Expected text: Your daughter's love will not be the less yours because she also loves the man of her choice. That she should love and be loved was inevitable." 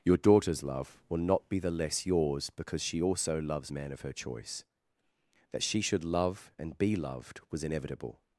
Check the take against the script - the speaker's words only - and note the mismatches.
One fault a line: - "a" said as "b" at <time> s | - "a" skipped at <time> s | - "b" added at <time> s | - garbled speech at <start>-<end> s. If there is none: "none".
- "the" skipped at 3.7 s